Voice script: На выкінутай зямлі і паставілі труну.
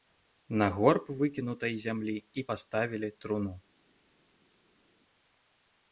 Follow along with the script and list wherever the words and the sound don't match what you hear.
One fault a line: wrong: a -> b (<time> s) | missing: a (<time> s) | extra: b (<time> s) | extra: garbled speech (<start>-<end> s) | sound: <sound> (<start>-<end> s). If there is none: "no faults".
extra: горб (0.8 s)